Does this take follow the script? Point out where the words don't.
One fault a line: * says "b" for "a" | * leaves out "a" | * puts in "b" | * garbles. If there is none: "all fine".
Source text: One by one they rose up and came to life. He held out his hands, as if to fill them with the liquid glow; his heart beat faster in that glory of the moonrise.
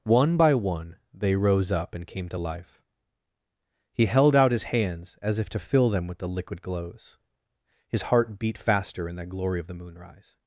* says "glows" for "glow"